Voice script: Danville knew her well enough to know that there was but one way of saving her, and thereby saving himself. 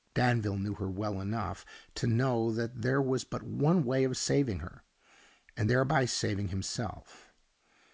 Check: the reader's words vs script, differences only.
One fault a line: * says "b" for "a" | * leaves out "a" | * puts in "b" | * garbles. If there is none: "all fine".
all fine